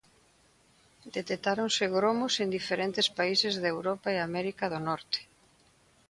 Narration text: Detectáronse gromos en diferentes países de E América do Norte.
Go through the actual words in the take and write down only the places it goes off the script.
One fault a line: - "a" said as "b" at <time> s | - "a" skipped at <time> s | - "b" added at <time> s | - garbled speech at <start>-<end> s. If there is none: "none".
- "Europa" added at 3.8 s